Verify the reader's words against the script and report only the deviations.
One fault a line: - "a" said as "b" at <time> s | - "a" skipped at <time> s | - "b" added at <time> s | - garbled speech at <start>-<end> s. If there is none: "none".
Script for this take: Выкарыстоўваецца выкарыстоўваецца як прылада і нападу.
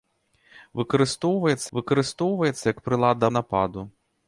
none